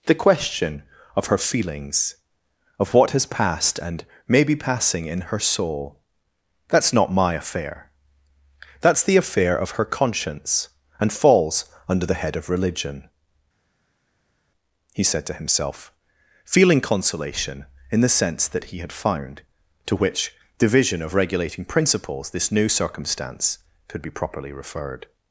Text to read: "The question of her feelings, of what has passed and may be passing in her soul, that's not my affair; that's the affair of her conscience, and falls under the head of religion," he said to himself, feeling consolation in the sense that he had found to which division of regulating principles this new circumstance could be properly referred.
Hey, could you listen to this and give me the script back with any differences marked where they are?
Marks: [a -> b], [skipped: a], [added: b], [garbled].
"The question of her feelings, of what has passed and may be passing in her soul, that's not my affair; that's the affair of her conscience, and falls under the head of religion," he said to himself, feeling consolation in the sense that he had found to which division of regulating principles this new circumstance could be properly referred.